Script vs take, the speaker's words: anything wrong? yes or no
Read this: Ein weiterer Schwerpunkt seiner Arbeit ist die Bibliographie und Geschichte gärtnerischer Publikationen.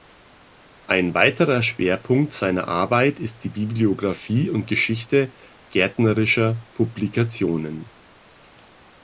no